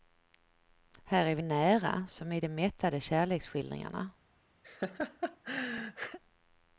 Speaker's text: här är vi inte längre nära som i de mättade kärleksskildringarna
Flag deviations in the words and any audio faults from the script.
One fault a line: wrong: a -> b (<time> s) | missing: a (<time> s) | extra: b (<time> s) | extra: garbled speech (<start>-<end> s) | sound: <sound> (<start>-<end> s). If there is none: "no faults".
missing: inte längre (1.4 s)
sound: laugh (4.6-6.2 s)